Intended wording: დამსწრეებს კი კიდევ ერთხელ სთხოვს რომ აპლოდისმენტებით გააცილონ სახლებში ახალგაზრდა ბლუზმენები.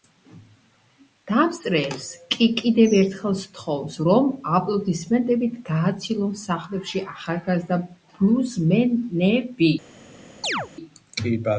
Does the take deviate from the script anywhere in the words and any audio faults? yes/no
yes